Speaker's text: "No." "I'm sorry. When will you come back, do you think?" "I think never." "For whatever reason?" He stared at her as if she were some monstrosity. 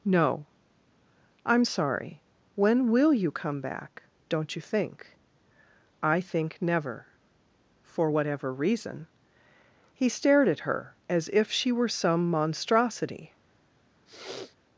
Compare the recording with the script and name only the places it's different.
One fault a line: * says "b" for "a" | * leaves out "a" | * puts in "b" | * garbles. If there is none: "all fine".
* says "don't" for "do"